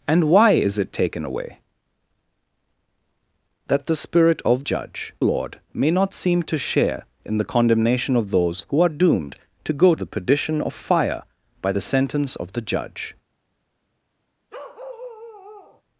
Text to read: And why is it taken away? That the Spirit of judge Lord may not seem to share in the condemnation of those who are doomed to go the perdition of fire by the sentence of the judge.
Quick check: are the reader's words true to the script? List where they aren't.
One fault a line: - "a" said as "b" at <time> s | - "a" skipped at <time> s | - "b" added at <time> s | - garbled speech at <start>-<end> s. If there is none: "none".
none